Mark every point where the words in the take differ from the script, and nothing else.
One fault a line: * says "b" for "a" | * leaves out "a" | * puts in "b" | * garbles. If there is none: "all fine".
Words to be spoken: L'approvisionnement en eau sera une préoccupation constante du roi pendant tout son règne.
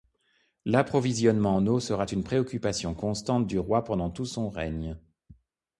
all fine